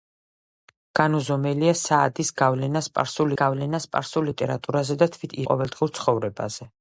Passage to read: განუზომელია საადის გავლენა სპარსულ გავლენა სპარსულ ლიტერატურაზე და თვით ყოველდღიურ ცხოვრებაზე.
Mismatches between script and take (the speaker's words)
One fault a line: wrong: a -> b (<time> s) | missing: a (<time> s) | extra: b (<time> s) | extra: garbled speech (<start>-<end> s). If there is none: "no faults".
no faults